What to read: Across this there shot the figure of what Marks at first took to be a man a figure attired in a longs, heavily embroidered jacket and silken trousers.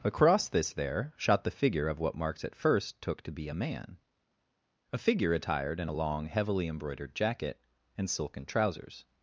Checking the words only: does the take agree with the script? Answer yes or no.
no